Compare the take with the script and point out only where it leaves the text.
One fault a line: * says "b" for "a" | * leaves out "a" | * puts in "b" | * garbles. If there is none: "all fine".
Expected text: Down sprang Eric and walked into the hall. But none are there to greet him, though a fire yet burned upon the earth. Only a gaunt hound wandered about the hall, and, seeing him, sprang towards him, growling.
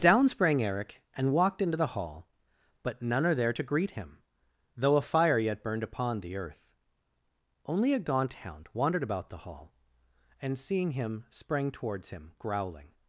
all fine